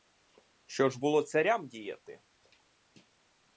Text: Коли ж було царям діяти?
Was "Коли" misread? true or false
true